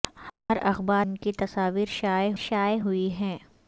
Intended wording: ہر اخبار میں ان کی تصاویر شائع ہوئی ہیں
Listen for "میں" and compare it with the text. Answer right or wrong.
wrong